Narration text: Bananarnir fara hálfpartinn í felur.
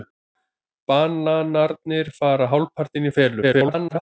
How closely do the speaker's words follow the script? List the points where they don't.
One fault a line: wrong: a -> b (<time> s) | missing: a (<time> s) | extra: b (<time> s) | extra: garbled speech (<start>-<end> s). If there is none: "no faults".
extra: garbled speech (3.4-4.0 s)